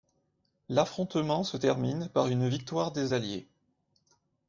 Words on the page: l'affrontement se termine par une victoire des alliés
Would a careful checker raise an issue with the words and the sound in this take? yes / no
no